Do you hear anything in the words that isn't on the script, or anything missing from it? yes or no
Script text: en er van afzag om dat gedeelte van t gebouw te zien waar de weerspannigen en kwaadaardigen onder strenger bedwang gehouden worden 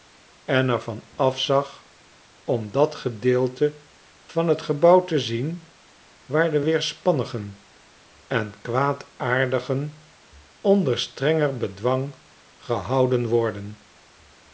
no